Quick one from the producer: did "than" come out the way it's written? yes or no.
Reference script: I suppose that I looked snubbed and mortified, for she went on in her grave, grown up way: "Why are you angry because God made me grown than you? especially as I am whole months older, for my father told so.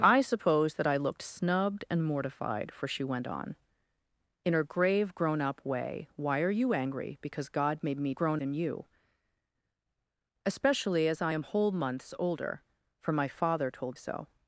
yes